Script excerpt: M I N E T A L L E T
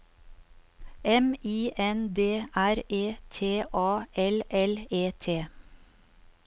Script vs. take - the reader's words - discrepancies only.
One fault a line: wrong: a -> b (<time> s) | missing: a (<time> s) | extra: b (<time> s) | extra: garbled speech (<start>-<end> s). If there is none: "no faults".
extra: D R (2.1 s)